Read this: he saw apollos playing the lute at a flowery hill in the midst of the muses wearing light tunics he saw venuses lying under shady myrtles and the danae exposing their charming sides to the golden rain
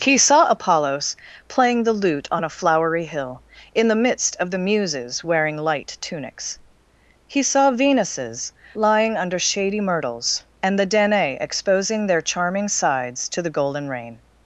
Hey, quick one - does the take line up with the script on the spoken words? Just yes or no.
no